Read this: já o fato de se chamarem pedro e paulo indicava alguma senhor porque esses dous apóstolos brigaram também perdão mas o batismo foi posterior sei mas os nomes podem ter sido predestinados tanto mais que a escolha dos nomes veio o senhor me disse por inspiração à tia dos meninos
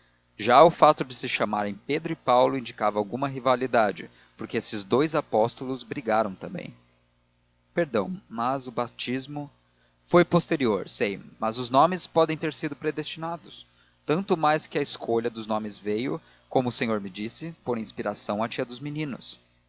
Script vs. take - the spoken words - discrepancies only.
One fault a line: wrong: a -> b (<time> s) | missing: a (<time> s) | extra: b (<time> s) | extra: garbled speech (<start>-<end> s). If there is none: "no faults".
wrong: senhor -> rivalidade (3.3 s)
extra: como (16.5 s)